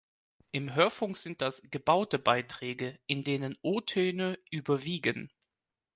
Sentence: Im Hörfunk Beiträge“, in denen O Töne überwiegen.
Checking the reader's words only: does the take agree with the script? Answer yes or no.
no